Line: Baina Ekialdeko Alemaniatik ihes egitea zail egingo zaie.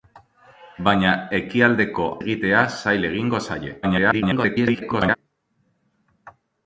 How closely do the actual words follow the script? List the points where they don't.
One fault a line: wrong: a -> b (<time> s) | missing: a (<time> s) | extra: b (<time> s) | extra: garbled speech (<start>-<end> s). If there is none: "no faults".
missing: Alemaniatik ihes (2.1 s)
extra: garbled speech (3.8-5.2 s)